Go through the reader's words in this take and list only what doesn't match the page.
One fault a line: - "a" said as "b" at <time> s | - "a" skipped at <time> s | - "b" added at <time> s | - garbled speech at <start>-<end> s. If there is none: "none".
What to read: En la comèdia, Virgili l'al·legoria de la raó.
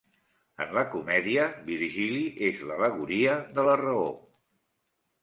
- "és" added at 2.5 s